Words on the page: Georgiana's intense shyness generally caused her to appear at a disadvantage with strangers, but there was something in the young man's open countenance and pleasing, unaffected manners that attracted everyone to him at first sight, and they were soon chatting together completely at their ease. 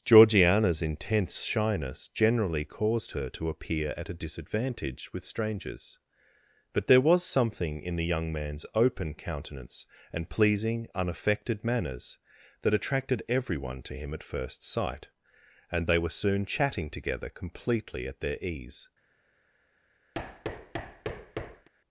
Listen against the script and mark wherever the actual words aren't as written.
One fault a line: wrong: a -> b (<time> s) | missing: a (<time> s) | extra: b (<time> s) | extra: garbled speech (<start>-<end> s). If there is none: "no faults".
no faults